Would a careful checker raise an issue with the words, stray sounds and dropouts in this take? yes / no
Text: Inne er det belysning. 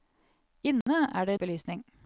yes